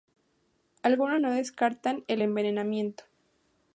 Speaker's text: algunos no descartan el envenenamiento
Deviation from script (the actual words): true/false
false